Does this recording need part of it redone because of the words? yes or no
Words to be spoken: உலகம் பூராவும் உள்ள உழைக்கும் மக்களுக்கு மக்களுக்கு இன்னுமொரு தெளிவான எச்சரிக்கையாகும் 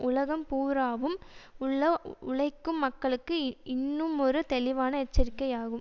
yes